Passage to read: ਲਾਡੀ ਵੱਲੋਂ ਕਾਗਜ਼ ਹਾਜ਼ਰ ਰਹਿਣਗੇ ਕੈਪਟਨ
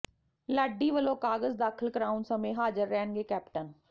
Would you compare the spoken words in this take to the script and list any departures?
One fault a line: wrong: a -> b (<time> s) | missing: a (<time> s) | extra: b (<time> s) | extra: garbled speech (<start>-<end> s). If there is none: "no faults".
extra: ਦਾਖ਼ਲ ਕਰਾਉਣ ਸਮੇਂ (1.6 s)